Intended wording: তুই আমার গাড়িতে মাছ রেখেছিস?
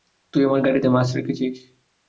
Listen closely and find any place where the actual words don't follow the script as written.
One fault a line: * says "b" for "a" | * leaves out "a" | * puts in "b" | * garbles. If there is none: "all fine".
all fine